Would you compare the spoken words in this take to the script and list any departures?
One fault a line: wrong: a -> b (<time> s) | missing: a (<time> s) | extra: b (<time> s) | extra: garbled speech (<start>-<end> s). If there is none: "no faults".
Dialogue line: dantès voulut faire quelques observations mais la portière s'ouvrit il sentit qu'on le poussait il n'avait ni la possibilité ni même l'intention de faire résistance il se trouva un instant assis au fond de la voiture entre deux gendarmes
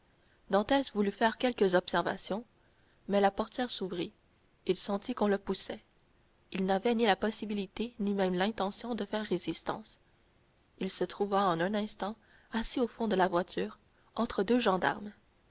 extra: en (11.5 s)